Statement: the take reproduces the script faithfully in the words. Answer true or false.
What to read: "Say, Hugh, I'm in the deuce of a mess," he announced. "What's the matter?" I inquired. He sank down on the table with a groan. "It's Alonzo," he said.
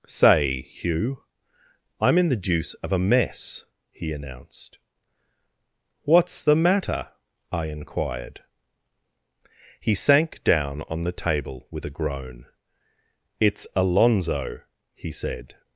true